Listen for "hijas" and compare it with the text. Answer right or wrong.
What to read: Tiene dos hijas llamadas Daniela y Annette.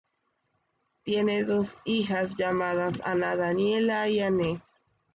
right